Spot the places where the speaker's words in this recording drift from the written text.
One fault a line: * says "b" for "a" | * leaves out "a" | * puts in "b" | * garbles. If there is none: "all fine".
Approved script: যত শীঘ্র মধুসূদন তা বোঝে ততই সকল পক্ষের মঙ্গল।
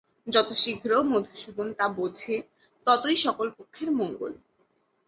all fine